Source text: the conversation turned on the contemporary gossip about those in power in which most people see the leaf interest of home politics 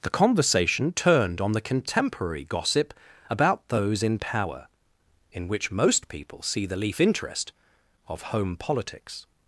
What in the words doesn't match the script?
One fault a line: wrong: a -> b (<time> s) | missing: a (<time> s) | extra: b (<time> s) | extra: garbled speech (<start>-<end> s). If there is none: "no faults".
no faults